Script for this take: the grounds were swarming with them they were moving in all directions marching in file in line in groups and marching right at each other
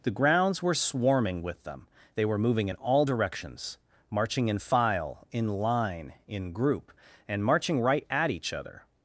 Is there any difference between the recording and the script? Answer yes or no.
yes